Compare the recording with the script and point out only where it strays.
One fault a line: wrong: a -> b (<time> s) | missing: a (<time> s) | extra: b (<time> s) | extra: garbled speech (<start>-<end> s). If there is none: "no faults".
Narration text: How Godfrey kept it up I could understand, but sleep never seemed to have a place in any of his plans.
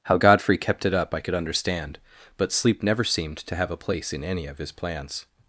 no faults